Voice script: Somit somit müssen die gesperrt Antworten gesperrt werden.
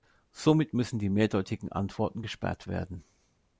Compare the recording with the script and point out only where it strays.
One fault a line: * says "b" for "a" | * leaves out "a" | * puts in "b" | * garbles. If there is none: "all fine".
* leaves out "somit"
* says "mehrdeutigen" for "gesperrt"